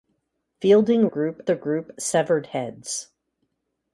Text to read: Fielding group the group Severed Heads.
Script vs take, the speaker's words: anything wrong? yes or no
no